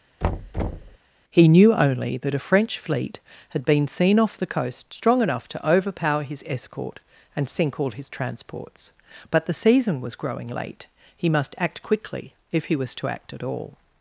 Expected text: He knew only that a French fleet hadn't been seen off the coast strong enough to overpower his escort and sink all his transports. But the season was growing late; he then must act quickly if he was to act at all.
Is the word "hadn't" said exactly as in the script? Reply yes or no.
no